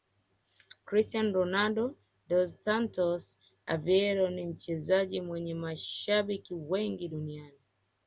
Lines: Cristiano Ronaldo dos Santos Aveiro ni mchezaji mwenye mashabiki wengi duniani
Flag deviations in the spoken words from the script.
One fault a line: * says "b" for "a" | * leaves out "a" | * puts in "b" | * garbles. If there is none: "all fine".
all fine